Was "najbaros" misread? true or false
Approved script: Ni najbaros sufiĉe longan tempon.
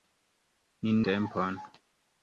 true